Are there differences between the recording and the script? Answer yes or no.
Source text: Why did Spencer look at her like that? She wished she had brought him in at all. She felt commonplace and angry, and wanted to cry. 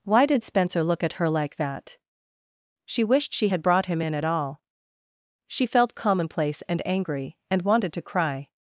no